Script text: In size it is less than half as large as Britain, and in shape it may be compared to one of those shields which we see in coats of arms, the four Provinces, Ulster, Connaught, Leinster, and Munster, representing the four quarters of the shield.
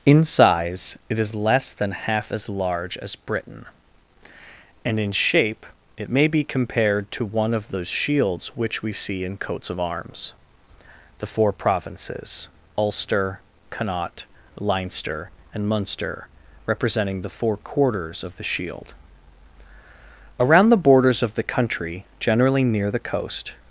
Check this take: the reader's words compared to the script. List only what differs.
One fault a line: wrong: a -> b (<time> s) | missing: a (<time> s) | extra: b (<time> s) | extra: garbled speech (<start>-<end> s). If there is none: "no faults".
extra: Around the borders of the country generally near the coast (20.4 s)